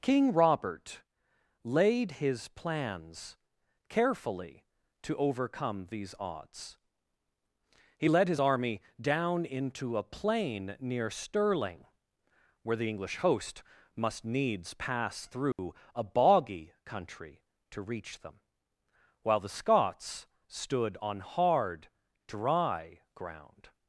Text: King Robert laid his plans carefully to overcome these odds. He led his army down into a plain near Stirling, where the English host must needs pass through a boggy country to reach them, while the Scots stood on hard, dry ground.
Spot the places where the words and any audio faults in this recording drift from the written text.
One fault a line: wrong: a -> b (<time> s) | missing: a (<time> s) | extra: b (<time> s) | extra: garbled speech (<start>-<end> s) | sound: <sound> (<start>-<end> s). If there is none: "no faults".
sound: dropout (15.5-15.6 s)